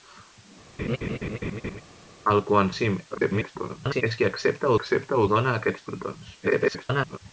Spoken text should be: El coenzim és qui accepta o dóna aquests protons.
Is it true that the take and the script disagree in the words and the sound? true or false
true